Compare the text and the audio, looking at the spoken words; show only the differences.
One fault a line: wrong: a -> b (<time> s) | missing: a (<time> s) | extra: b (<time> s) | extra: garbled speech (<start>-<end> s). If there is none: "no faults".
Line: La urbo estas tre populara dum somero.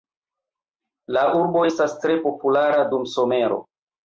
no faults